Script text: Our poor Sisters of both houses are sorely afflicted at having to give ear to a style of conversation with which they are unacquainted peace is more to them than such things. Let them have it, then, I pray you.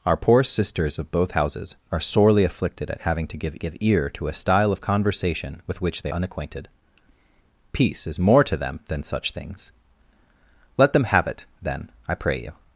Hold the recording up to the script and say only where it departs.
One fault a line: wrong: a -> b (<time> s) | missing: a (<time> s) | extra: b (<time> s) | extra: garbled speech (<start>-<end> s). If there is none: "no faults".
extra: give (3.6 s)
missing: are (6.1 s)